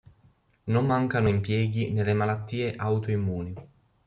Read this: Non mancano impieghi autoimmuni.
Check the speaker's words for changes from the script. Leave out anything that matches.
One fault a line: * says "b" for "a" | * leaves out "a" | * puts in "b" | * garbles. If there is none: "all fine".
* puts in "nelle malattie"